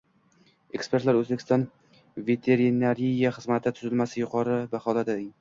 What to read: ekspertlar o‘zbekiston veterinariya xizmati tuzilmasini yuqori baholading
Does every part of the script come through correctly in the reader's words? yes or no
yes